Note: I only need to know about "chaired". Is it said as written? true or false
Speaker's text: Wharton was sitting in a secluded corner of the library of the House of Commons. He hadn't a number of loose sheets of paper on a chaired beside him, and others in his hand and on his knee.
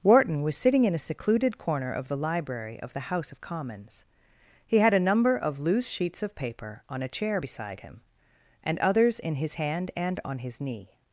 false